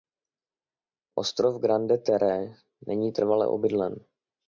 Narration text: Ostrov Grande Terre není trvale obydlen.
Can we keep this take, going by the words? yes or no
yes